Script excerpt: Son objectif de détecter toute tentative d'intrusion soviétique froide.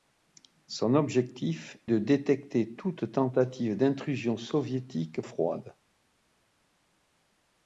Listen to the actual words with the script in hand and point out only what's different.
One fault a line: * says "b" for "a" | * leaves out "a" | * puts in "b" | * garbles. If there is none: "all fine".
all fine